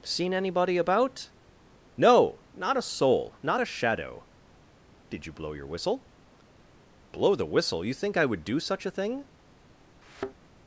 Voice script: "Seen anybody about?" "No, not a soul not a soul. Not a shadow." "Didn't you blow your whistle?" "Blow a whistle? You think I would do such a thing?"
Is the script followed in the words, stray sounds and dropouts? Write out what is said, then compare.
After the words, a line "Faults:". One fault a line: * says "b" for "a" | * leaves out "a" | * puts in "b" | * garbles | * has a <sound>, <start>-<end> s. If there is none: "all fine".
"Seen anybody about?" "No, not a soul. Not a shadow." "Did you blow your whistle?" "Blow the whistle? You think I would do such a thing?"
Faults:
* leaves out "soul Not a"
* says "Did" for "Didn't"
* says "the" for "a"
* has a thud, 10.0-10.4 s